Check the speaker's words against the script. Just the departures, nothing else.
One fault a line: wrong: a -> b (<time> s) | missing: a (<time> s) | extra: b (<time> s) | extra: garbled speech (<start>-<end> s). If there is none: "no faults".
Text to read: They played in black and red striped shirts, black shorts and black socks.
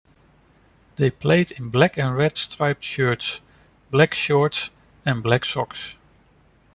no faults